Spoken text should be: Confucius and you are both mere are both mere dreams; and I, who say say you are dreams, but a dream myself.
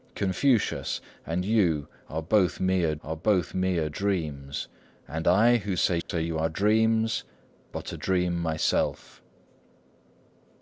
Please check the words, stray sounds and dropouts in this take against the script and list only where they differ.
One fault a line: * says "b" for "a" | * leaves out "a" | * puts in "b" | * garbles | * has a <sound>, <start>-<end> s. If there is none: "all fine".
* has a dropout, 6.0-6.1 s